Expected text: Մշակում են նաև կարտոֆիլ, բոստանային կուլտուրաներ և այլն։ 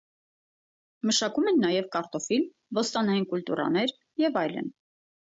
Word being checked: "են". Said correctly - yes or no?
yes